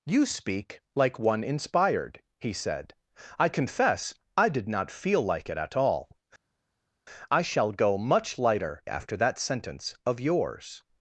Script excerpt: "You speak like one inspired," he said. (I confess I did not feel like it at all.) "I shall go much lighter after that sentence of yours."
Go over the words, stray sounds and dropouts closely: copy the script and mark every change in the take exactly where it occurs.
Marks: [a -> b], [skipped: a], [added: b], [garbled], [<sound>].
"You speak like one inspired," he said. (I confess I did not feel like it at all.) "I shall go much lighter after that sentence of yours."